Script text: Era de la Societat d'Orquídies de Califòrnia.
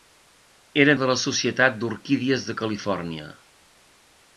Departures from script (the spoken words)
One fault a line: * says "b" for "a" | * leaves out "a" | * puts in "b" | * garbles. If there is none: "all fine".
all fine